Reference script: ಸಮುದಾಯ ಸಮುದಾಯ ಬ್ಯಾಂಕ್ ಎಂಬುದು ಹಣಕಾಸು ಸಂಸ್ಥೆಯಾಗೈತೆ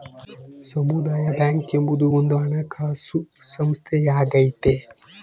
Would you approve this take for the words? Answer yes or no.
no